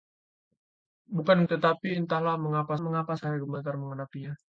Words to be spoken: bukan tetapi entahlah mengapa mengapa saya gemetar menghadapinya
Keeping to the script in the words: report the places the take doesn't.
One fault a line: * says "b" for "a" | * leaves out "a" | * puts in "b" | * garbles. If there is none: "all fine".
all fine